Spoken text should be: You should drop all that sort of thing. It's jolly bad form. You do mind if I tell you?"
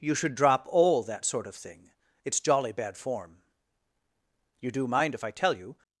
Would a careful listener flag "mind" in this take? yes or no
no